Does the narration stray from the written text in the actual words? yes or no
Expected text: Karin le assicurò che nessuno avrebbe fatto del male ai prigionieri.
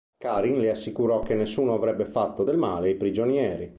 no